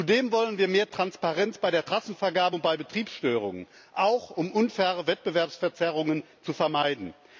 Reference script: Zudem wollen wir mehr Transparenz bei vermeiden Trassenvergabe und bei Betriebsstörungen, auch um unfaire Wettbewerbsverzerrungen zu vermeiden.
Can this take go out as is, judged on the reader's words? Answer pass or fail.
fail